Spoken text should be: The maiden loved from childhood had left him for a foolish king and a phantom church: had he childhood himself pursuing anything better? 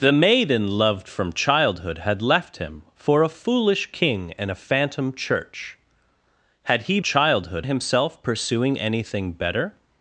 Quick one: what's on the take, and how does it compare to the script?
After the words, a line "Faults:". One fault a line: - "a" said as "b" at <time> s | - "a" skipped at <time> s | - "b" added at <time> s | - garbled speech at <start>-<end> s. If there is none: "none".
The maiden loved from childhood had left him for a foolish king and a phantom church: had he childhood himself pursuing anything better?
Faults:
none